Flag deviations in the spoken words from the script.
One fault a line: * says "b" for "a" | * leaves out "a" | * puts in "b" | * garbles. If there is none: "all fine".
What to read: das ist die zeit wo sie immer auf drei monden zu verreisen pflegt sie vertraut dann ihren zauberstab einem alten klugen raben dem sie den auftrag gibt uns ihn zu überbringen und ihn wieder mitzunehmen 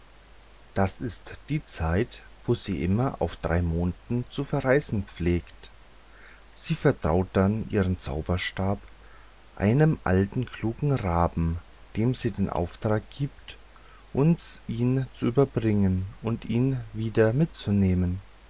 all fine